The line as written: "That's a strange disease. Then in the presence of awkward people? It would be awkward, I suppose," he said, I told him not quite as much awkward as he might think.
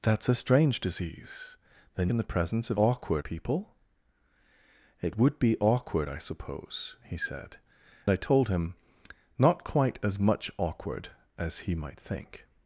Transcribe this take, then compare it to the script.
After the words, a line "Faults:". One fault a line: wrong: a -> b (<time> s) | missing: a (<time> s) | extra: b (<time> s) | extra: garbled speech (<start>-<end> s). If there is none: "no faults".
"That's a strange disease. Then in the presence of awkward people? It would be awkward, I suppose," he said, I told him not quite as much awkward as he might think.
Faults:
no faults